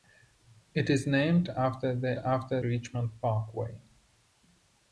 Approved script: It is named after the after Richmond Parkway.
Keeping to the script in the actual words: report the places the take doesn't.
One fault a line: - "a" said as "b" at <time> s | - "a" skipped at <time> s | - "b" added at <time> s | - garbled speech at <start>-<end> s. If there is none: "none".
none